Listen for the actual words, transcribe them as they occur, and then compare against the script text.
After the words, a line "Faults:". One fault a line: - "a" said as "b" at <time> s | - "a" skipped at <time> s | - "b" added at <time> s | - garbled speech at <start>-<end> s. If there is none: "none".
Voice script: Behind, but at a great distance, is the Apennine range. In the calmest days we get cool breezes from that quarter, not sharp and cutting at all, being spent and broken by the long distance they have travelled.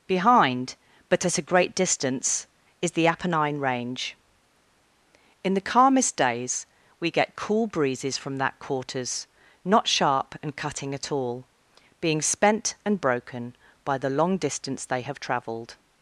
Behind, but at a great distance, is the Apennine range. In the calmest days we get cool breezes from that quarters, not sharp and cutting at all, being spent and broken by the long distance they have travelled.
Faults:
- "quarter" said as "quarters" at 8.6 s